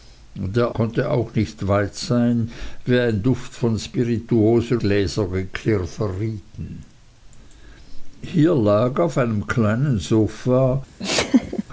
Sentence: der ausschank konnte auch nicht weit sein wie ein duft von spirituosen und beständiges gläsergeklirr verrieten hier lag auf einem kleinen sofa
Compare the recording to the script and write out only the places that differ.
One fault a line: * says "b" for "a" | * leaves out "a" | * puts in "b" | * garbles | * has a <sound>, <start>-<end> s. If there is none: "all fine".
* leaves out "ausschank"
* leaves out "und beständiges"
* has a laugh, 11.0-11.6 s